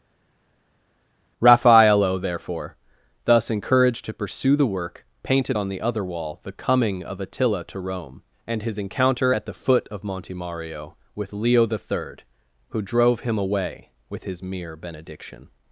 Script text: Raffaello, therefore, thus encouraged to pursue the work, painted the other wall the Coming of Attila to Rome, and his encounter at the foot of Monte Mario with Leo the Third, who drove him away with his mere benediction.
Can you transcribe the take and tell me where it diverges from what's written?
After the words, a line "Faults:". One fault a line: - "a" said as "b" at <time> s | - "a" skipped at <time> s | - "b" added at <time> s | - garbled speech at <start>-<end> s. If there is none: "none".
Raffaello, therefore, thus encouraged to pursue the work, painted on the other wall the Coming of Attila to Rome, and his encounter at the foot of Monte Mario with Leo the Third, who drove him away with his mere benediction.
Faults:
- "on" added at 5.5 s